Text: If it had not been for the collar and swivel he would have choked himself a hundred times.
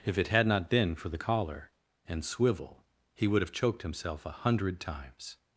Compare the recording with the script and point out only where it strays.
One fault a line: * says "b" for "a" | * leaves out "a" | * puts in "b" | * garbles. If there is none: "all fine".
all fine